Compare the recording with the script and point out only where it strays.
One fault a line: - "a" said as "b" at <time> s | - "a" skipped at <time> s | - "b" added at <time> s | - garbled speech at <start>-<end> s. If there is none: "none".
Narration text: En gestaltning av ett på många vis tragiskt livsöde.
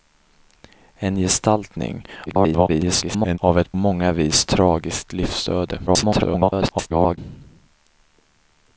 - garbled speech at 2.3-3.4 s
- "på" skipped at 3.7 s
- garbled speech at 5.9-7.2 s